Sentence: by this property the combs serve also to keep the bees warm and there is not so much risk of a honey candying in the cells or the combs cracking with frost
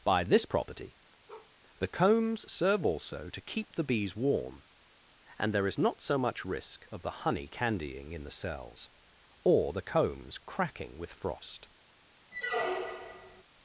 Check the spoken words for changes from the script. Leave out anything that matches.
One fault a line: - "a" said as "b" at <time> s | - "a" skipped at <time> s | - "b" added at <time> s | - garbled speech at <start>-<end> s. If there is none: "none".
- "a" said as "the" at 7.0 s